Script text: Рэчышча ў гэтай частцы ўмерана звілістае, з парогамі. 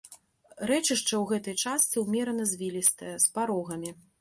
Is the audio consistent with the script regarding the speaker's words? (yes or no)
yes